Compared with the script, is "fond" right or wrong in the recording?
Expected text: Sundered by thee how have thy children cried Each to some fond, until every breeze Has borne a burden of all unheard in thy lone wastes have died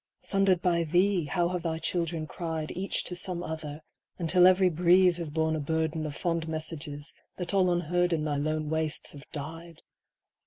wrong